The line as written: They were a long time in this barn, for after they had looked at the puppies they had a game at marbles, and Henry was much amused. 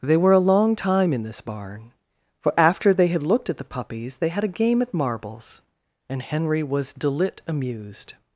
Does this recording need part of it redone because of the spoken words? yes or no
yes